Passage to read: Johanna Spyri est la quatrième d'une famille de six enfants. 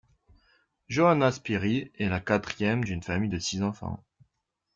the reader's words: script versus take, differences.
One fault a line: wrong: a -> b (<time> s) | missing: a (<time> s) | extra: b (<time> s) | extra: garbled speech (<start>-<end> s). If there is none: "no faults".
no faults